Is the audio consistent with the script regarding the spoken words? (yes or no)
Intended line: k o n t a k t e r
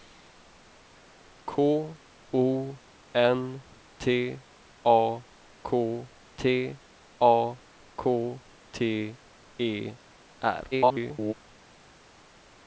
no